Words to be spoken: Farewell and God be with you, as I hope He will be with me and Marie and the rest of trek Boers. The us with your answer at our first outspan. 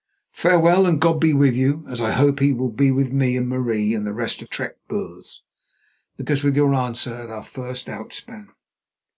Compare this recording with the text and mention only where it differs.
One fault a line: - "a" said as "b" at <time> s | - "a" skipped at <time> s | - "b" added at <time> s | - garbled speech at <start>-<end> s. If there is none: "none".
none